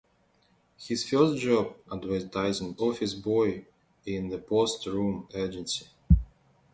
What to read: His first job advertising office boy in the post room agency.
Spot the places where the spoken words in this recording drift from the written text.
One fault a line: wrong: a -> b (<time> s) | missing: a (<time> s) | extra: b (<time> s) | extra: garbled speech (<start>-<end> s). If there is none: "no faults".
no faults